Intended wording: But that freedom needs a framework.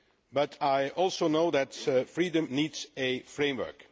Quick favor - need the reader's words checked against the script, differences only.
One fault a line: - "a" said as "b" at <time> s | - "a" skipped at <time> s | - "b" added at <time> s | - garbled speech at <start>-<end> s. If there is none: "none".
- "I also know" added at 0.6 s